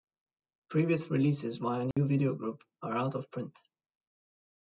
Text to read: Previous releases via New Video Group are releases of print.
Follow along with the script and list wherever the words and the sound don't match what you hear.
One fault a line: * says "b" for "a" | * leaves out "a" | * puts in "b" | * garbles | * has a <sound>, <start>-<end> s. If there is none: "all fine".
* has a dropout, 1.9-2.0 s
* says "out" for "releases"